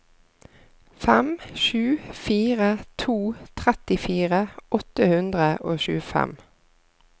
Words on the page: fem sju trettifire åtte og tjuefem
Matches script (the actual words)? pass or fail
fail